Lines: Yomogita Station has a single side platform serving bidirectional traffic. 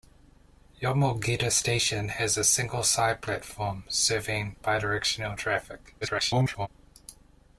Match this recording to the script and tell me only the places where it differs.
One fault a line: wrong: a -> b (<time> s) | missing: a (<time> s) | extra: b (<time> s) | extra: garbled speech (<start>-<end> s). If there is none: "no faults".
extra: garbled speech (6.0-6.7 s)